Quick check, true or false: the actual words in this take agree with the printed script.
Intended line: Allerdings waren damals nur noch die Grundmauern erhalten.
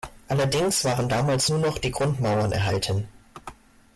true